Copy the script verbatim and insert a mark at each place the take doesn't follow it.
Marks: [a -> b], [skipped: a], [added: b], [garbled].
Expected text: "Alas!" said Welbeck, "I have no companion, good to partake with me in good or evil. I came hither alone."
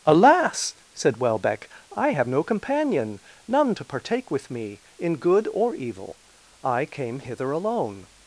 "Alas!" said Welbeck, "I have no companion, [good -> none] to partake with me in good or evil. I came hither alone."